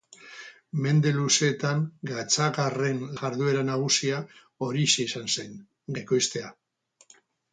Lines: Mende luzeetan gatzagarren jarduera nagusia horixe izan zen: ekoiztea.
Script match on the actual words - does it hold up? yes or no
yes